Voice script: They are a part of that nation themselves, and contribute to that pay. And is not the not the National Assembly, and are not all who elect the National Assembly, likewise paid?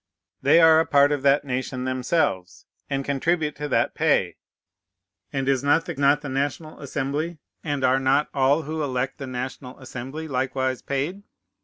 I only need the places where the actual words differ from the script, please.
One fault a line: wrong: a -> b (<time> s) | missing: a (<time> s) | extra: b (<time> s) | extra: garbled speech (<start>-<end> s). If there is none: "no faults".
no faults